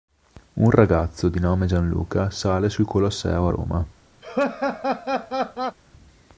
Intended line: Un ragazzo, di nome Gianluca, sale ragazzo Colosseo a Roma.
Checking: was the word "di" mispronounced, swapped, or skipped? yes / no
no